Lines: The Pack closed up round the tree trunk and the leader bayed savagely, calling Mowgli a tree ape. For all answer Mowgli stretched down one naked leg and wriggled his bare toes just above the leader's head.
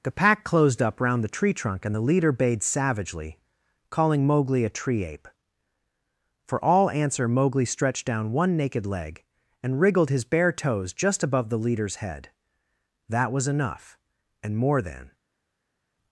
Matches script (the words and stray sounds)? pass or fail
fail